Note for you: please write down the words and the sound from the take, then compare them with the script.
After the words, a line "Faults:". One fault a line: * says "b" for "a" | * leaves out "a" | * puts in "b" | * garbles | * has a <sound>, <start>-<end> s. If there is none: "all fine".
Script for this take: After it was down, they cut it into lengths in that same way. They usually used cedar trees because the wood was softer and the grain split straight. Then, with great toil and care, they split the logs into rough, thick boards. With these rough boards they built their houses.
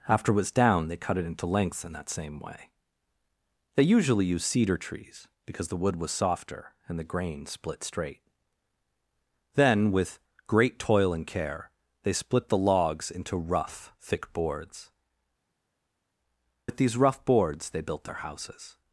After it was down, they cut it into lengths in that same way. They usually used cedar trees because the wood was softer and the grain split straight. Then, with great toil and care, they split the logs into rough, thick boards. With these rough boards they built their houses.
Faults:
all fine